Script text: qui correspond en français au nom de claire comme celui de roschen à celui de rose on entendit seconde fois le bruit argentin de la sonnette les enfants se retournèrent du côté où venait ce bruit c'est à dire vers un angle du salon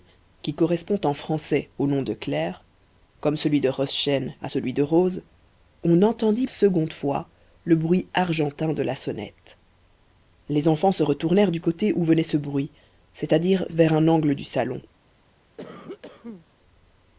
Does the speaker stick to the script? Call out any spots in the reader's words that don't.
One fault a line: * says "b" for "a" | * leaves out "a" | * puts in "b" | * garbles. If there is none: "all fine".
all fine